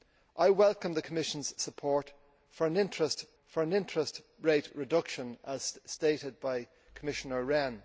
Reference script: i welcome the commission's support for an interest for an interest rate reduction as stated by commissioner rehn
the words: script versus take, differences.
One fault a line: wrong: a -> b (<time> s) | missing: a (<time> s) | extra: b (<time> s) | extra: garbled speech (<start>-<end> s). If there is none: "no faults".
no faults